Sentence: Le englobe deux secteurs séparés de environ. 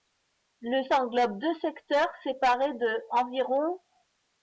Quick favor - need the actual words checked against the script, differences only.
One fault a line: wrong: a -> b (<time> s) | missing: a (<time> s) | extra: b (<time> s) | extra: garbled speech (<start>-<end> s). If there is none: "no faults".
no faults